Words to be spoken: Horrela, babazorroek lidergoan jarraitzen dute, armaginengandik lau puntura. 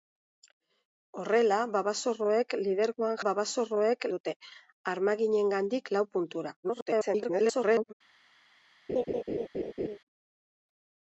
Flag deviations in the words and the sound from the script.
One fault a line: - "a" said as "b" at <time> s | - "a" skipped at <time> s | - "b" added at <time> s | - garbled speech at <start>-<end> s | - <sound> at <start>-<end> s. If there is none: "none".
- "jarraitzen" said as "babazorroek" at 3.3 s
- garbled speech at 6.6-7.9 s
- laugh at 8.9-10.0 s